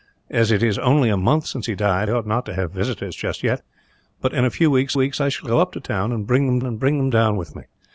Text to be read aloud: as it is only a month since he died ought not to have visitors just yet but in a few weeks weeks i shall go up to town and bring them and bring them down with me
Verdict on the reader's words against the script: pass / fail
pass